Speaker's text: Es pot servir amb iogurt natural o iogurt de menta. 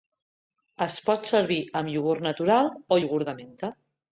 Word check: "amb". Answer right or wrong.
right